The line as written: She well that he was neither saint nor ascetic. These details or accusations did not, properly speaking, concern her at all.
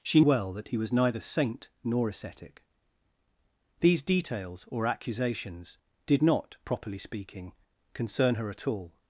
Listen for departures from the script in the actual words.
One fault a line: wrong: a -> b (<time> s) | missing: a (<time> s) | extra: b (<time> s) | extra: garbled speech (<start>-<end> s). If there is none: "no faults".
no faults